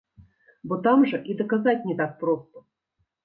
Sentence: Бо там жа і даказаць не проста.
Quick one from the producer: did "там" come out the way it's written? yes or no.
yes